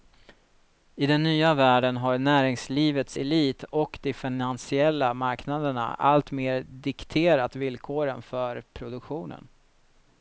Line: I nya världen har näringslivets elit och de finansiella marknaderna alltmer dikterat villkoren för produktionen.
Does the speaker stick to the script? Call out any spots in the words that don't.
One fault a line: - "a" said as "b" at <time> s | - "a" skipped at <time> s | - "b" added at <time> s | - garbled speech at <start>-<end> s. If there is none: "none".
- "den" added at 1.1 s